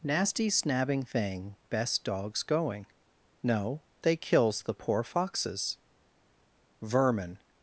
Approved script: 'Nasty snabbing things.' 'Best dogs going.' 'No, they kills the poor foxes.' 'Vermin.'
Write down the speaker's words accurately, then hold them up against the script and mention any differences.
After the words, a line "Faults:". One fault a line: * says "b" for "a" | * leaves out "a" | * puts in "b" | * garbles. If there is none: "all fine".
'Nasty snabbing thing.' 'Best dogs going.' 'No, they kills the poor foxes.' 'Vermin.'
Faults:
* says "thing" for "things"